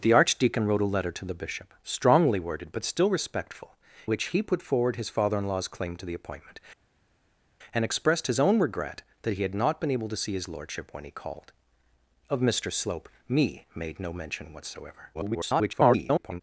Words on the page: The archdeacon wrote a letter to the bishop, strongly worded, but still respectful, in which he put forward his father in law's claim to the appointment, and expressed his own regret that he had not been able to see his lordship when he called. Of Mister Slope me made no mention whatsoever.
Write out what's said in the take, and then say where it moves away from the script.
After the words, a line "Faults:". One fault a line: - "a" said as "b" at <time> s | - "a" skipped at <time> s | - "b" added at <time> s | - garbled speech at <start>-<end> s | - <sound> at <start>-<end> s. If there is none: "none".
The archdeacon wrote a letter to the bishop, strongly worded, but still respectful, which he put forward his father in law's claim to the appointment, and expressed his own regret that he had not been able to see his lordship when he called. Of Mister Slope me made no mention whatsoever. [garbled]
Faults:
- "in" skipped at 3.8 s
- garbled speech at 15.1-16.4 s